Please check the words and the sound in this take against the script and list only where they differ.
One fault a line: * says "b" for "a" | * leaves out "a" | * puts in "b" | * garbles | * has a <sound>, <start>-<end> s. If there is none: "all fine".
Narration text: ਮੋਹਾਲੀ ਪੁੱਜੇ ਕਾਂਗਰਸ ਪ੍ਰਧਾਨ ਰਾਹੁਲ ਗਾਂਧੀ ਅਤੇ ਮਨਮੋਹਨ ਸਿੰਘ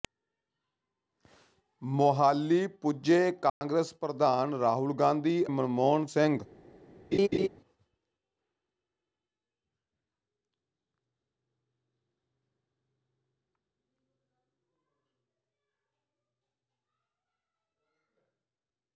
* has a dropout, 3.5-3.6 s
* leaves out "ਅਤੇ"
* has a laugh, 7.1-7.5 s